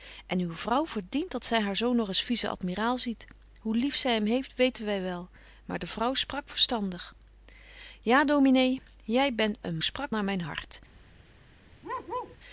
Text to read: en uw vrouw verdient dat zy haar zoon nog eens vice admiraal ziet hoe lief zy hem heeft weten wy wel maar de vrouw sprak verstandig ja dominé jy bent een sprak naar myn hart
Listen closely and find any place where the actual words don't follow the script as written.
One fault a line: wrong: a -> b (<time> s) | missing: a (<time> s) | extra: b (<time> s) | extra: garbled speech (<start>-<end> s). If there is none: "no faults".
no faults